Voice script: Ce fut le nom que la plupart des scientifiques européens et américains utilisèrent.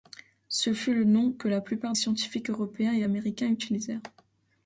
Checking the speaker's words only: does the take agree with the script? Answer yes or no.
no